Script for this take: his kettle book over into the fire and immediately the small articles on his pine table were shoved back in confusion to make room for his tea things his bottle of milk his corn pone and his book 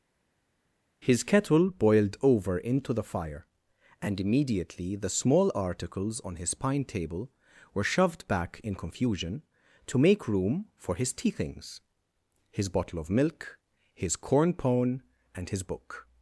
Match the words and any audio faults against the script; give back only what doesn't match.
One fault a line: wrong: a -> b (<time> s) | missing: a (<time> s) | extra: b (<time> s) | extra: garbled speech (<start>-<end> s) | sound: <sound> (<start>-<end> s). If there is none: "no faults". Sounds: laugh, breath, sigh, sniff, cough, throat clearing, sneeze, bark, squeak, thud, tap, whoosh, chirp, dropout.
wrong: book -> boiled (1.7 s)